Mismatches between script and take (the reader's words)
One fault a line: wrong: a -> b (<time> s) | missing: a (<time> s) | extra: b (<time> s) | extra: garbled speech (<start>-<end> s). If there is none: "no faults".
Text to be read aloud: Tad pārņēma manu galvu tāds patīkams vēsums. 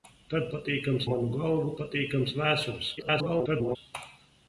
wrong: pārņēma -> patīkams (0.6 s)
missing: tāds (1.7 s)
extra: garbled speech (3.0-3.8 s)